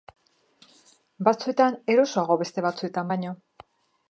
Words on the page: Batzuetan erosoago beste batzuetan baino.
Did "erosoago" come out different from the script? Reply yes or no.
no